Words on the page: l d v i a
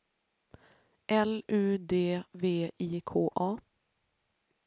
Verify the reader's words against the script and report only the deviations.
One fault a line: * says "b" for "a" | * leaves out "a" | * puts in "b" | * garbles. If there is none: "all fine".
* puts in "u"
* puts in "k"